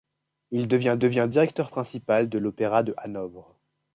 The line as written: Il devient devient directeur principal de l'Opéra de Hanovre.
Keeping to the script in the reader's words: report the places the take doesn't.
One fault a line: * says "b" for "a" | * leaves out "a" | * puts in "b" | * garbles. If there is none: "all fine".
all fine